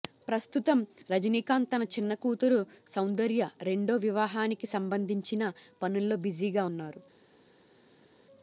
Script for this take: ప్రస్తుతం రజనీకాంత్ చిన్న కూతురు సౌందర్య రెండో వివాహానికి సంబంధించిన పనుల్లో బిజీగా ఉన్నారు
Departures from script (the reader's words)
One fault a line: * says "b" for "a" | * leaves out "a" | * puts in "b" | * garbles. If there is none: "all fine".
* puts in "తన"